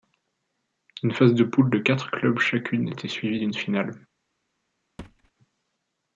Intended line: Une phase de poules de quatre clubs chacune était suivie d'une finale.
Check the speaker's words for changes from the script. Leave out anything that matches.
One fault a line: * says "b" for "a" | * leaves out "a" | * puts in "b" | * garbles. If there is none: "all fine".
all fine